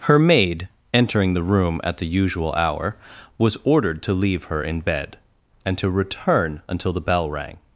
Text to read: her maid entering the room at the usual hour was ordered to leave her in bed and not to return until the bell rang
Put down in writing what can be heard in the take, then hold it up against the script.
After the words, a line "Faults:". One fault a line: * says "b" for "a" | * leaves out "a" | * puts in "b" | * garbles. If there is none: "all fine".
her maid entering the room at the usual hour was ordered to leave her in bed and to return until the bell rang
Faults:
* leaves out "not"